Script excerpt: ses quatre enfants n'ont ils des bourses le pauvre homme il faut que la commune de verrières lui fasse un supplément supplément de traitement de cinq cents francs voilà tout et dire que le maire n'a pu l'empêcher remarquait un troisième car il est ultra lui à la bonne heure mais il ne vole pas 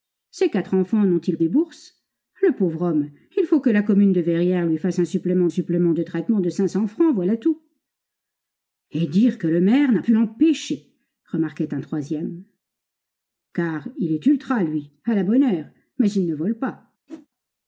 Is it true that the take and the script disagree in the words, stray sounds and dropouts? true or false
true